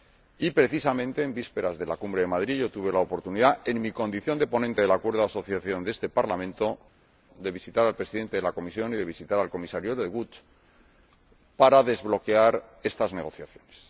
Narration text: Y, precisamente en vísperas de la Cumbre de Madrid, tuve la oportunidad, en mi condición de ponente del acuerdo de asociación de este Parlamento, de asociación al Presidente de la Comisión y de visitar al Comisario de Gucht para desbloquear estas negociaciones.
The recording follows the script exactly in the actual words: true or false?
false